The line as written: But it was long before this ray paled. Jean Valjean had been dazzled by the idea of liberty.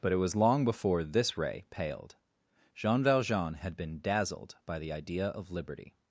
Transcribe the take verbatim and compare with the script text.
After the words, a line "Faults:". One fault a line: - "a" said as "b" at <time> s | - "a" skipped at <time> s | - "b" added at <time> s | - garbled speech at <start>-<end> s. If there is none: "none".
But it was long before this ray paled. Jean Valjean had been dazzled by the idea of liberty.
Faults:
none